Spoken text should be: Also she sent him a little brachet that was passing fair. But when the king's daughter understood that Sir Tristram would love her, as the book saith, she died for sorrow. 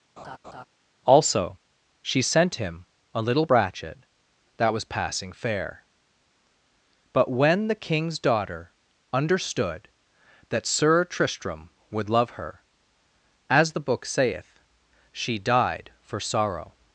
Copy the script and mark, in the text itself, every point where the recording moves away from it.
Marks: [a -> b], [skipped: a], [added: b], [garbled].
Also she sent him a little brachet that was passing fair. But when the king's daughter understood that Sir Tristram would love her, as the book saith, she died for sorrow.